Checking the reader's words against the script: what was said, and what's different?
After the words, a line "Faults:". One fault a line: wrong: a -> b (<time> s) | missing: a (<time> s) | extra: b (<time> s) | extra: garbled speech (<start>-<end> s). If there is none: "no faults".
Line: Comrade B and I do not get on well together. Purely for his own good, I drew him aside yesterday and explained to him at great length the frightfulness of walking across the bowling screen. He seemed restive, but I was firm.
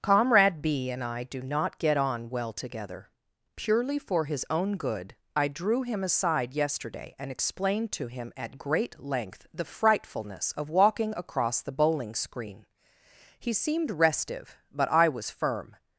Comrade B and I do not get on well together. Purely for his own good, I drew him aside yesterday and explained to him at great length the frightfulness of walking across the bowling screen. He seemed restive, but I was firm.
Faults:
no faults